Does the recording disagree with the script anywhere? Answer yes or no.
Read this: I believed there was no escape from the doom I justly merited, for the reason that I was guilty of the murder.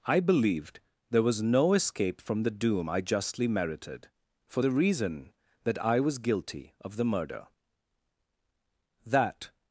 yes